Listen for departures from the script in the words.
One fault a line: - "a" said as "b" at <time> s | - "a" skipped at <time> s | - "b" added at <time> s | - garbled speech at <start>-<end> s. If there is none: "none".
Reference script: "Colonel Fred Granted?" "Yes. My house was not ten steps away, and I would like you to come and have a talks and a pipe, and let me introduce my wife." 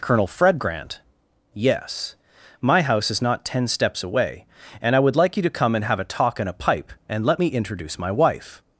- "Granted" said as "Grant" at 0.6 s
- "was" said as "is" at 3.1 s
- "talks" said as "talk" at 6.0 s